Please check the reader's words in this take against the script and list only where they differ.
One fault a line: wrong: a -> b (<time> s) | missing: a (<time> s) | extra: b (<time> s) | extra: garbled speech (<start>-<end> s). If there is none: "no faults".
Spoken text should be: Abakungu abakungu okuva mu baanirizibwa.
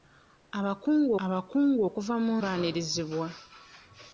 no faults